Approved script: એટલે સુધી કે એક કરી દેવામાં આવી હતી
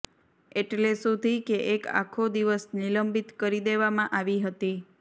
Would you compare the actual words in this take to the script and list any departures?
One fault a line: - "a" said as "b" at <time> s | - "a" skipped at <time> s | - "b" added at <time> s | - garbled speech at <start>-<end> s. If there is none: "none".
- "આખો દિવસ નિલંબિત" added at 1.9 s